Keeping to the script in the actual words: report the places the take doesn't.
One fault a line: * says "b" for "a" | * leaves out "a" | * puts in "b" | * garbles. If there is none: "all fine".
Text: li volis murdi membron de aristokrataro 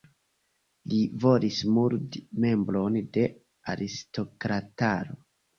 all fine